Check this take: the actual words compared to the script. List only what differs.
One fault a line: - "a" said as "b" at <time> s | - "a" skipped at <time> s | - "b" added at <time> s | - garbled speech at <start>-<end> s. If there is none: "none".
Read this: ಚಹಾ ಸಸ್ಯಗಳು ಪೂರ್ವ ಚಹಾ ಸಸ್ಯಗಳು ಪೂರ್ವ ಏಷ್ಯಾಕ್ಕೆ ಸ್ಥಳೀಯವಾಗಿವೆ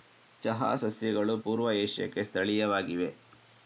- "ಚಹಾ ಸಸ್ಯಗಳು ಪೂರ್ವ" skipped at 1.7 s